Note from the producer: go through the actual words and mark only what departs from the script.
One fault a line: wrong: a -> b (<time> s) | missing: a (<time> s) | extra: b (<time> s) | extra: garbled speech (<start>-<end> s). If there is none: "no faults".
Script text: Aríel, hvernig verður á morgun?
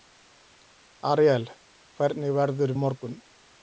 no faults